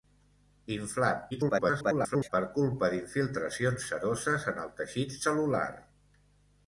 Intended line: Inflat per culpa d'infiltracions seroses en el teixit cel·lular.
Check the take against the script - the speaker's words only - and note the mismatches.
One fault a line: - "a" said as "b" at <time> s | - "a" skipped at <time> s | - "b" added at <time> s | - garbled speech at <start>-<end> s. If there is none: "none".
- garbled speech at 1.3-2.3 s